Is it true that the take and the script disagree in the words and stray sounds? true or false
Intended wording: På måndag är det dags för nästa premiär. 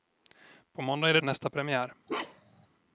true